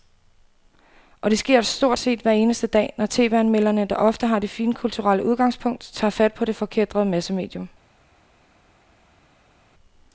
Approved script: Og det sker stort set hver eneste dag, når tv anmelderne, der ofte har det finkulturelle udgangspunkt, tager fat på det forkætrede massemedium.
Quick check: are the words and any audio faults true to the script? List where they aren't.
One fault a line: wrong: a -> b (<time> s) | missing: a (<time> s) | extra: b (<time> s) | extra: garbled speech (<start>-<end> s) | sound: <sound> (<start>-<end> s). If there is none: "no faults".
no faults